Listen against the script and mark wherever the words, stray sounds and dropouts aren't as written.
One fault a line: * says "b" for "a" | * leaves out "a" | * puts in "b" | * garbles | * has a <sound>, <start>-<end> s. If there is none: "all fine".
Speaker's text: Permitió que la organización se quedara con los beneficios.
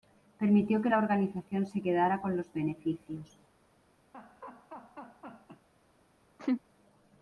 * has a laugh, 4.1-5.7 s
* has a laugh, 6.4-6.6 s